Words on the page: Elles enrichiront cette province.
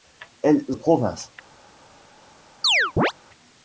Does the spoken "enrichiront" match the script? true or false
false